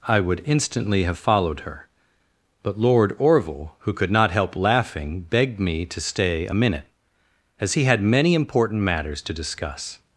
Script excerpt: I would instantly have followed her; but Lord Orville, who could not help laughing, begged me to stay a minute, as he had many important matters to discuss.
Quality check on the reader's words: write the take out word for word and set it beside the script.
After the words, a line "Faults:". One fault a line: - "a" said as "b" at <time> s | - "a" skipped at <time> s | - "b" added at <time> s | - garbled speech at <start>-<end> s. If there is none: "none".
I would instantly have followed her; but Lord Orville, who could not help laughing, begged me to stay a minute, as he had many important matters to discuss.
Faults:
none